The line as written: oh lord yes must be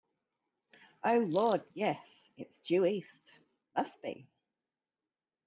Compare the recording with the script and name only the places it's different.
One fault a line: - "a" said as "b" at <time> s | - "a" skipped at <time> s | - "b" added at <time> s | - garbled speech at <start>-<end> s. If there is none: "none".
- "it's due east" added at 2.4 s